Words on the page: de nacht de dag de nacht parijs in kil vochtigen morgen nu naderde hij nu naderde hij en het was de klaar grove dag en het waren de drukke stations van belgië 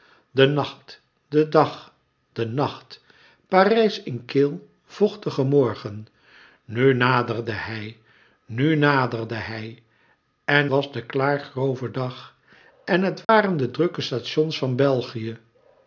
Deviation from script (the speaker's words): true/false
true